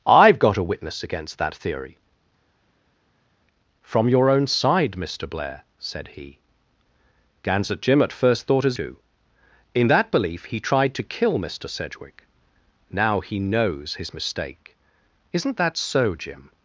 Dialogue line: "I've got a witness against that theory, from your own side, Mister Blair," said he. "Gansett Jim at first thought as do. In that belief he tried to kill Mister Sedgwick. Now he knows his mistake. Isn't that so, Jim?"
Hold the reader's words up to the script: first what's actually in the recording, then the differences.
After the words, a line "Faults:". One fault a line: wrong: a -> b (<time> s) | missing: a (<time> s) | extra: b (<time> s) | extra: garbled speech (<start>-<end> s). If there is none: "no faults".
"I've got a witness against that theory, from your own side, Mister Blair," said he. "Gansett Jim at first thought as do. In that belief he tried to kill Mister Sedgwick. Now he knows his mistake. Isn't that so, Jim?"
Faults:
no faults